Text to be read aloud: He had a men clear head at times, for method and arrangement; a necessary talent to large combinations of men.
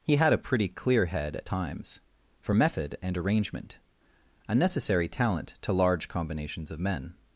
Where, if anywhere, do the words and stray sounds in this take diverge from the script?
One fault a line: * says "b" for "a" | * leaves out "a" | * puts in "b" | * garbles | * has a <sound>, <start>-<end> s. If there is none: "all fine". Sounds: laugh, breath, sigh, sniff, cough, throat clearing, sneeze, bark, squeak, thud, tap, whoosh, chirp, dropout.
* says "pretty" for "men"